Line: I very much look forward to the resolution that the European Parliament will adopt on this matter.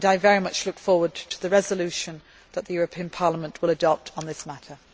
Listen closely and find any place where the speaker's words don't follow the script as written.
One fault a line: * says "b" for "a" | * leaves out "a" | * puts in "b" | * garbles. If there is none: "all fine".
all fine